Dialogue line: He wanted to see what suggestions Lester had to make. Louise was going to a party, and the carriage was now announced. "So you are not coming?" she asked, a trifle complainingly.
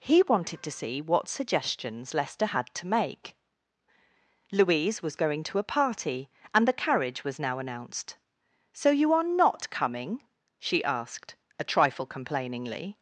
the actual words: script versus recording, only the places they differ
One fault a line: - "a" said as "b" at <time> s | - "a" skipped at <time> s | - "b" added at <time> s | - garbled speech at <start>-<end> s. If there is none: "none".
none